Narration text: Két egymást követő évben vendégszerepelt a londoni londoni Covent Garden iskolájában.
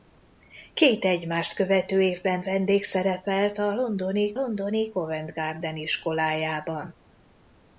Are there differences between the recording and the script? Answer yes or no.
no